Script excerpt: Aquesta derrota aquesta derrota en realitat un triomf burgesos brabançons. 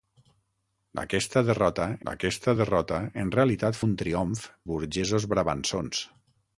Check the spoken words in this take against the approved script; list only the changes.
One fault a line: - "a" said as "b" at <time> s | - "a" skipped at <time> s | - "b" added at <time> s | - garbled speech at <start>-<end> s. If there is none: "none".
none